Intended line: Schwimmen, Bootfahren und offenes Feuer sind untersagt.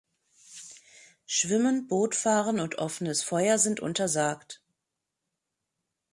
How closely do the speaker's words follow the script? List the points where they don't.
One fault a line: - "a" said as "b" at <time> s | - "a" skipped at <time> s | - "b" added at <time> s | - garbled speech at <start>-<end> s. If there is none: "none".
none